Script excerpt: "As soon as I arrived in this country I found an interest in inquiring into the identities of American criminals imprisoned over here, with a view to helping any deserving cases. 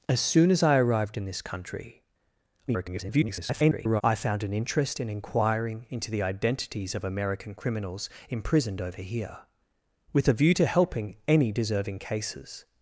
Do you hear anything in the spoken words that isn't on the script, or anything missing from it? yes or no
yes